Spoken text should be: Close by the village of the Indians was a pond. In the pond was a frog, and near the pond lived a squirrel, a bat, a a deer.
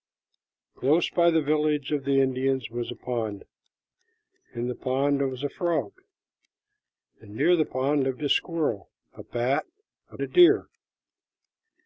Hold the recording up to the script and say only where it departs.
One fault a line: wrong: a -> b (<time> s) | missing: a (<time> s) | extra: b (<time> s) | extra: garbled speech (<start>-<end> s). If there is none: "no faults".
no faults